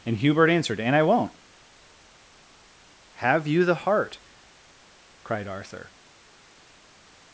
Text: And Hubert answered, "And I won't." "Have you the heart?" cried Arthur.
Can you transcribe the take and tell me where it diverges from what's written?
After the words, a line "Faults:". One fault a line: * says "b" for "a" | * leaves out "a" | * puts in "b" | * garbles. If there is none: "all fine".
And Hubert answered, "And I won't." "Have you the heart?" cried Arthur.
Faults:
all fine